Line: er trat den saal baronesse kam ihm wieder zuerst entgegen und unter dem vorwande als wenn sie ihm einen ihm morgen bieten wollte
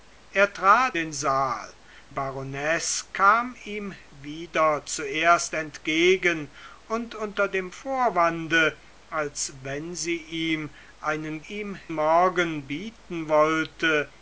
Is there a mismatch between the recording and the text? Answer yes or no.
no